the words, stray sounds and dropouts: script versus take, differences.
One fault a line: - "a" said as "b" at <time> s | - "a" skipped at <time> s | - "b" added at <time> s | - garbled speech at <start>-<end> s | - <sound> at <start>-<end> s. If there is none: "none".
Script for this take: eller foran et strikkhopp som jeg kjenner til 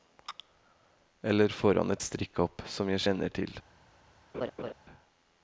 - laugh at 4.3-4.7 s